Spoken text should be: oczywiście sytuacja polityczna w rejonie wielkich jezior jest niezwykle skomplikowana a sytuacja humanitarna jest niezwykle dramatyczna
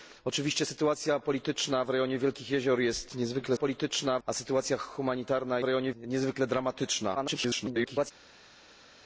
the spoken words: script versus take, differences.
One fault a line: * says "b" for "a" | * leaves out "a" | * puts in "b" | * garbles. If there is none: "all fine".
* says "polityczna" for "skomplikowana"
* says "rejonie" for "jest"
* garbles